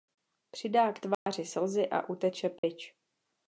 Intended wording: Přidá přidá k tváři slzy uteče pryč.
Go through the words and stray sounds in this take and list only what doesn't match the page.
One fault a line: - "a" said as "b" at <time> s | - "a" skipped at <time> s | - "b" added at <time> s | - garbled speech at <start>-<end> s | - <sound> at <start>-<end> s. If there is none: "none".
- "přidá" skipped at 0.9 s
- dropout at 1.1-1.3 s
- "a" added at 1.9 s
- dropout at 2.6-2.6 s